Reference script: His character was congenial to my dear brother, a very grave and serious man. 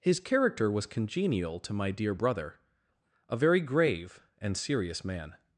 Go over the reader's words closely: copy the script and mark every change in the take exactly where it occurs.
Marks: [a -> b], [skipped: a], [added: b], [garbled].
His character was congenial to my dear brother, a very grave and serious man.